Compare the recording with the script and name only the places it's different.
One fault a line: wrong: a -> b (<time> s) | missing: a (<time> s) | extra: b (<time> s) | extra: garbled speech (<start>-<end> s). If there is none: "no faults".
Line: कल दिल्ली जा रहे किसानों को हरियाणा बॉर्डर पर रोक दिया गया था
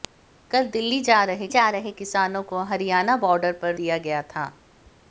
extra: जा रहे (1.5 s)
missing: रोक (3.8 s)